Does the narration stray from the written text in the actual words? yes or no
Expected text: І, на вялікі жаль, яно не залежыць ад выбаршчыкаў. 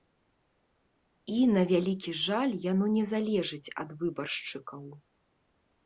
no